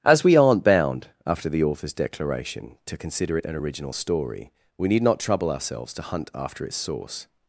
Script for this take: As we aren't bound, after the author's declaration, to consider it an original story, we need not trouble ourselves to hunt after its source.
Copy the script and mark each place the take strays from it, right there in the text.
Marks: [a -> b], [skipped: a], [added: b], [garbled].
As we aren't bound, after the author's declaration, to consider it an original story, we need not trouble ourselves to hunt after its source.